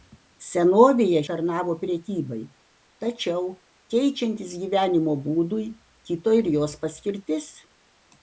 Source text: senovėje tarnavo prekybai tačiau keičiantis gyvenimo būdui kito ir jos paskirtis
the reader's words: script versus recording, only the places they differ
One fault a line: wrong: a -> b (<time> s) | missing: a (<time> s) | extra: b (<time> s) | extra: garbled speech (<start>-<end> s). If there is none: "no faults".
no faults